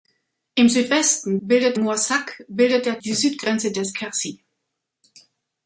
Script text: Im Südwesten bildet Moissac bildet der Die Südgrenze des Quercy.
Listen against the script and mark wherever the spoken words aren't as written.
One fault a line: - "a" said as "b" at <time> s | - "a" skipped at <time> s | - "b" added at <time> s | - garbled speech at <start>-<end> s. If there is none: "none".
none